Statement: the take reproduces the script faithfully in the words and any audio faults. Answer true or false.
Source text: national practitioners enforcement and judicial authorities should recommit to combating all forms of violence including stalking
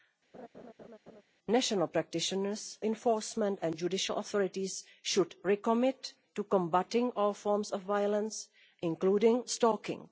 false